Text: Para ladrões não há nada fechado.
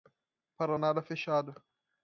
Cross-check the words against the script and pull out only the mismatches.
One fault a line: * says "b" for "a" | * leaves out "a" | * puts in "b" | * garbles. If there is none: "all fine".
* leaves out "ladrões não"